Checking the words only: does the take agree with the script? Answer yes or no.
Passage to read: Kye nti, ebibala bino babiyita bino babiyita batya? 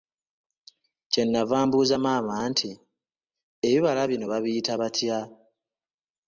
no